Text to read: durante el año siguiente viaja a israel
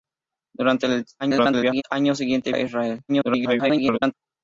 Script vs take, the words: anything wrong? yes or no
yes